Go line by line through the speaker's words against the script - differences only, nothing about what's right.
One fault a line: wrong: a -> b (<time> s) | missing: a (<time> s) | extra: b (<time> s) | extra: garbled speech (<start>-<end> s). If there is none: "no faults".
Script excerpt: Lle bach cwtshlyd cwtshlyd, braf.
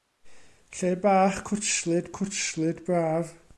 no faults